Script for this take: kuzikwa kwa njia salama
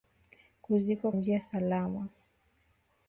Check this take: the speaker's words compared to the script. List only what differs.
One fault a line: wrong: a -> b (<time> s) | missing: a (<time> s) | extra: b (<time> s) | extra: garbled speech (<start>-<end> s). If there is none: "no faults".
missing: kwa (1.1 s)